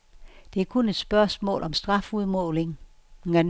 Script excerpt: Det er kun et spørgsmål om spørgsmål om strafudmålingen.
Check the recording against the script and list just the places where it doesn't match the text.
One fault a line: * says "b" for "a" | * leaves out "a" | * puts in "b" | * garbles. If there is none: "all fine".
* leaves out "spørgsmål om"